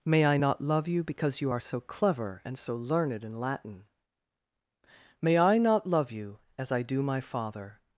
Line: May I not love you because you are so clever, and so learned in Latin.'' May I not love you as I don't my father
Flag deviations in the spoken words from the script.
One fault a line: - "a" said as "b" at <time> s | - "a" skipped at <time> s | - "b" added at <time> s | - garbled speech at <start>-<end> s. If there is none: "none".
- "don't" said as "do" at 6.8 s